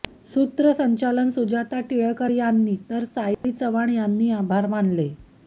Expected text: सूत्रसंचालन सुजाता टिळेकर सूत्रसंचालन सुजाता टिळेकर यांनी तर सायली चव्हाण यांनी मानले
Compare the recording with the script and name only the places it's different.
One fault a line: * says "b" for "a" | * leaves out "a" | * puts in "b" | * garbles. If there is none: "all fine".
* leaves out "सूत्रसंचालन सुजाता टिळेकर"
* puts in "आभार"